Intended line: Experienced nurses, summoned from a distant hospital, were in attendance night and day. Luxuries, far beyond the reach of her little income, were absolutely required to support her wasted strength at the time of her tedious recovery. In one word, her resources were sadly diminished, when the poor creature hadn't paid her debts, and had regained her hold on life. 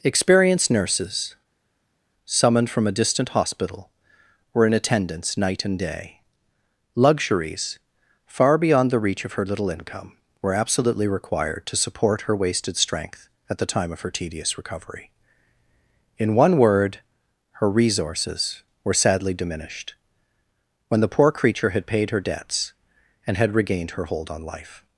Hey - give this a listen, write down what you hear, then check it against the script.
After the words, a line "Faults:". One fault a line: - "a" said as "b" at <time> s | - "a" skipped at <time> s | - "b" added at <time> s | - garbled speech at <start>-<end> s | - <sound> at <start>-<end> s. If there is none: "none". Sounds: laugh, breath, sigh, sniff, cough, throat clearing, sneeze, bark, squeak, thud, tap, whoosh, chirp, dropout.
Experienced nurses, summoned from a distant hospital, were in attendance night and day. Luxuries, far beyond the reach of her little income, were absolutely required to support her wasted strength at the time of her tedious recovery. In one word, her resources were sadly diminished, when the poor creature had paid her debts, and had regained her hold on life.
Faults:
- "hadn't" said as "had" at 21.7 s